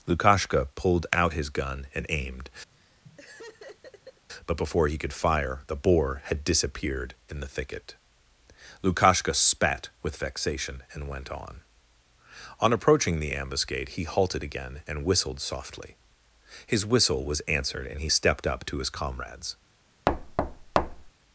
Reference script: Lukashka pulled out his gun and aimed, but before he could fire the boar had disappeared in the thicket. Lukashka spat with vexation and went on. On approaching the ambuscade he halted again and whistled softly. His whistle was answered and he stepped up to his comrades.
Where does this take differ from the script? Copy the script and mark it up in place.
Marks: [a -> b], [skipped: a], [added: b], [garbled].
Lukashka pulled out his gun and aimed, but before he could fire the boar had disappeared in the thicket. Lukashka spat with vexation and went on. On approaching the ambuscade he halted again and whistled softly. His whistle was answered and he stepped up to his comrades.